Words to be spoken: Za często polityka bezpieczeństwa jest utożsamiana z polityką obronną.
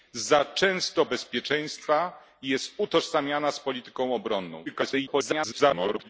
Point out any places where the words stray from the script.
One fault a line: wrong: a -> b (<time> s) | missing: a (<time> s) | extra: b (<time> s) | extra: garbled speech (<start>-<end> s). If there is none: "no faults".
missing: polityka (1.1 s)
extra: garbled speech (4.7-6.1 s)